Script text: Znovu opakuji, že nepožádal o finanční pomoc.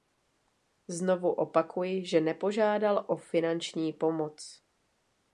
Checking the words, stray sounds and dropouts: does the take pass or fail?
pass